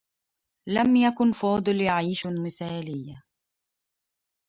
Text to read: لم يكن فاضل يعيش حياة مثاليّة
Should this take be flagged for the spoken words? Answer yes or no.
yes